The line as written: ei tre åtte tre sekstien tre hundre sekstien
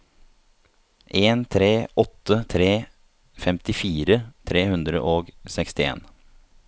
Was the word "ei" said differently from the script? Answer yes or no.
yes